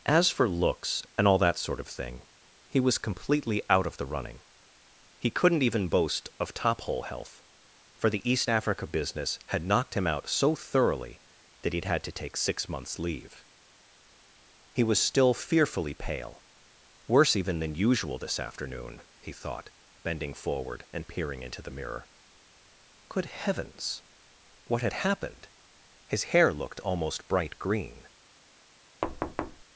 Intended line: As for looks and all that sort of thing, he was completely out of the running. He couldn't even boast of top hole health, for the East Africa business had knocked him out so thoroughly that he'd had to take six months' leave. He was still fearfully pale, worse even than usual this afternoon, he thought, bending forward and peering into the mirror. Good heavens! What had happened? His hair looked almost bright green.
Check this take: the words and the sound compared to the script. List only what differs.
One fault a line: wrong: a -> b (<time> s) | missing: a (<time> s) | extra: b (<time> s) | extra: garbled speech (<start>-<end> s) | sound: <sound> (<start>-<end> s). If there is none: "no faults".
sound: thud (29.0-29.6 s)